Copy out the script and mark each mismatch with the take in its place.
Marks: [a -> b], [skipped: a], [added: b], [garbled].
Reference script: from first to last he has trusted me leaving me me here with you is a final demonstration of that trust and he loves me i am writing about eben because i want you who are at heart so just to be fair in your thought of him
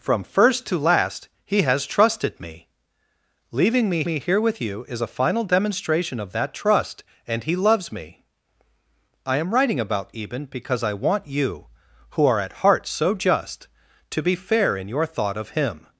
from first to last he has trusted me leaving me me here with you is a final demonstration of that trust and he loves me i am writing about eben because i want you who are at heart so just to be fair in your thought of him